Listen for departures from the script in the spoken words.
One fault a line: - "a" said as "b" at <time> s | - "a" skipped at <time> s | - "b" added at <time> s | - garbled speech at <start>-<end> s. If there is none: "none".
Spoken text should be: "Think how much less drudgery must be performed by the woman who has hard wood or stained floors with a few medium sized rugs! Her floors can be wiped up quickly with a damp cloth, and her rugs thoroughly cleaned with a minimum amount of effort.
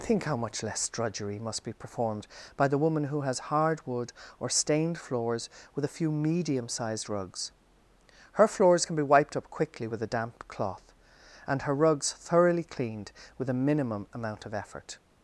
none